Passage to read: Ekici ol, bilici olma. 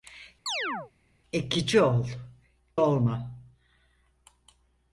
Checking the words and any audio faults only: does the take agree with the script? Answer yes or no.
no